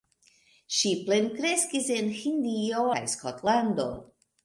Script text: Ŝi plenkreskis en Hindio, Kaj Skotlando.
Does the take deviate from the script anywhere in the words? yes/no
no